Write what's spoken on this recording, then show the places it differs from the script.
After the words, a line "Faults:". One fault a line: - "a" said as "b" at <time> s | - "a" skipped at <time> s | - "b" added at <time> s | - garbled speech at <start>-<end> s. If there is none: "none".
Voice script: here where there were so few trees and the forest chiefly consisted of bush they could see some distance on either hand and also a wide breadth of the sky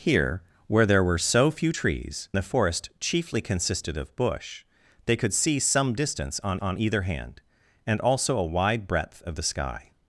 here where there were so few trees the forest chiefly consisted of bush they could see some distance on on either hand and also a wide breadth of the sky
Faults:
- "and" skipped at 2.3 s
- "on" added at 6.6 s